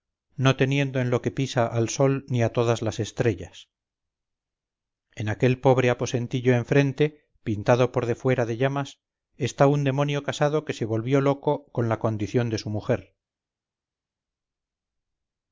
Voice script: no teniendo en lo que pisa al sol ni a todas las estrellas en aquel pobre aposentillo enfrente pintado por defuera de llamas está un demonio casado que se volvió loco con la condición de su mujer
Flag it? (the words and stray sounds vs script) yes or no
no